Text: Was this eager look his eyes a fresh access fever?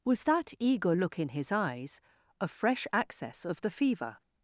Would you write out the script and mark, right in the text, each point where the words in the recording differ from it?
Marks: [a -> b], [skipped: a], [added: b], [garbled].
Was [this -> that] eager look [added: in] his eyes a fresh access [added: of the] fever?